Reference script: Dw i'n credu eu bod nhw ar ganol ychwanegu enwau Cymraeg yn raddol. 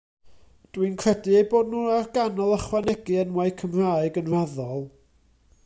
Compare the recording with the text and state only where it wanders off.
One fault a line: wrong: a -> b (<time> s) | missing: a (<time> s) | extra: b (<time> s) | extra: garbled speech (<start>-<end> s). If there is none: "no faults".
no faults